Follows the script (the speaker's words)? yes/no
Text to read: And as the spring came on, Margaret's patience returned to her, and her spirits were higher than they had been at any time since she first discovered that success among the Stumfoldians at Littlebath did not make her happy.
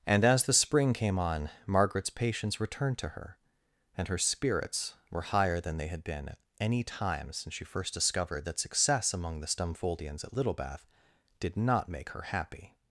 yes